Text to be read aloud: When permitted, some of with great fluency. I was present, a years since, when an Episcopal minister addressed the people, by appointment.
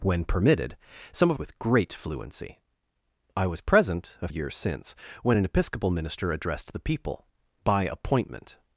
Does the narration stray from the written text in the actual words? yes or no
no